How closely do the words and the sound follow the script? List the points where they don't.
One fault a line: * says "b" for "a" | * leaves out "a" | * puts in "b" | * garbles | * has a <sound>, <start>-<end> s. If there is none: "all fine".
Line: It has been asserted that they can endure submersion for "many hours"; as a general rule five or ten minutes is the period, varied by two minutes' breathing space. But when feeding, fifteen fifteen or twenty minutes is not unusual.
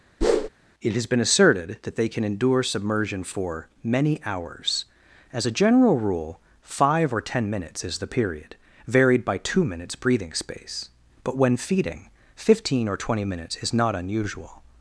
* has a whoosh, 0.2-0.5 s
* leaves out "fifteen"